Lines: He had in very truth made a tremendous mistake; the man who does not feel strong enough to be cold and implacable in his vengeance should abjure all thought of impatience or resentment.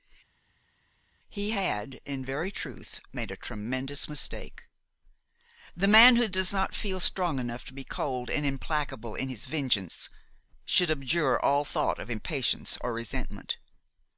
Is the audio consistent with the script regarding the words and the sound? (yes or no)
yes